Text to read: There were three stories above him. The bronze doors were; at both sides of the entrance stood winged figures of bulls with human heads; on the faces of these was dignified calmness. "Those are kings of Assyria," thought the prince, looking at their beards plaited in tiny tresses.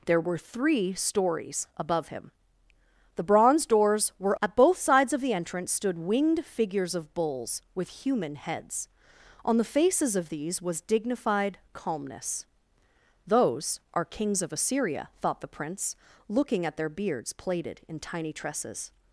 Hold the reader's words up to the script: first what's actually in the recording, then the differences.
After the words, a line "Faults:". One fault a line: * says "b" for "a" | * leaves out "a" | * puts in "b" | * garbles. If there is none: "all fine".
There were three stories above him. The bronze doors were; at both sides of the entrance stood winged figures of bulls with human heads; on the faces of these was dignified calmness. "Those are kings of Assyria," thought the prince, looking at their beards plaited in tiny tresses.
Faults:
all fine